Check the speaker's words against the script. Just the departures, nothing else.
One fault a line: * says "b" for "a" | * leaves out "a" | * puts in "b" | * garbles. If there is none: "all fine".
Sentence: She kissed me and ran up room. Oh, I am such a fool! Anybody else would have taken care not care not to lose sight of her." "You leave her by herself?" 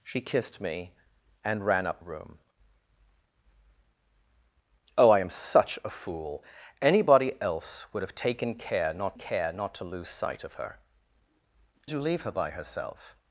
all fine